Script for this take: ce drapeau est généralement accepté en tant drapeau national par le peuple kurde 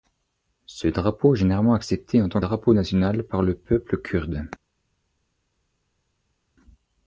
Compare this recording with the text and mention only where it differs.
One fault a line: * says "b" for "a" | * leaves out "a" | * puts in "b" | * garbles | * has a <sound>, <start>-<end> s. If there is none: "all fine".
all fine